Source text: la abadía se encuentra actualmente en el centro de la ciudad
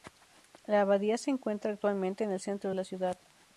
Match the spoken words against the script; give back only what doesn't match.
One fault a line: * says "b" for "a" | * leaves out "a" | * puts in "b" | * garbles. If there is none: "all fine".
all fine